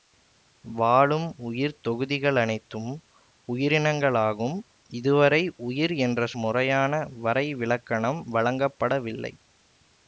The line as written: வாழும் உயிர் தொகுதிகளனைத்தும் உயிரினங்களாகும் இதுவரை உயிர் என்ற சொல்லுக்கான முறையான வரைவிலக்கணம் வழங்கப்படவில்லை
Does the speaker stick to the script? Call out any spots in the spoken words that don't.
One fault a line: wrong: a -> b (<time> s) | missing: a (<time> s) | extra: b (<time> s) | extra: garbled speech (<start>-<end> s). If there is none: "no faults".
missing: சொல்லுக்கான (6.3 s)